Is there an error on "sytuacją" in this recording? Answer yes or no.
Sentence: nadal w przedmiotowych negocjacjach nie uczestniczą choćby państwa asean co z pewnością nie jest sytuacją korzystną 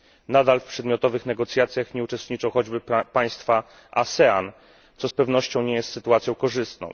no